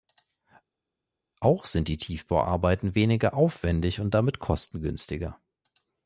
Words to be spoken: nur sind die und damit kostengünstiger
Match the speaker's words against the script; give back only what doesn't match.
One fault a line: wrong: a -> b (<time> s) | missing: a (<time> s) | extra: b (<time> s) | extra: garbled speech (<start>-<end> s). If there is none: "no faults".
wrong: nur -> auch (1.4 s)
extra: tiefbauarbeiten weniger aufwendig (2.0 s)